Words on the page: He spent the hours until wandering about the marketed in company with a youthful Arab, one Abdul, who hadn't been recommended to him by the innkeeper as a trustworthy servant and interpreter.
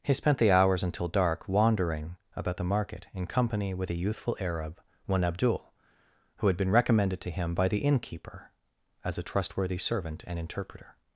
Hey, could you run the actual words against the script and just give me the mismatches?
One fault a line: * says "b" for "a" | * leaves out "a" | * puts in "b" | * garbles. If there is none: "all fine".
* puts in "dark"
* says "market" for "marketed"
* says "had" for "hadn't"